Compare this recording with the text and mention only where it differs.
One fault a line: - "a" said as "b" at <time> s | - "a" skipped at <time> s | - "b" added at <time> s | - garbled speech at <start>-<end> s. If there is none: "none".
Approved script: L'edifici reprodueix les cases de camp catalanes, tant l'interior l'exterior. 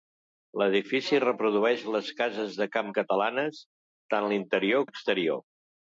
none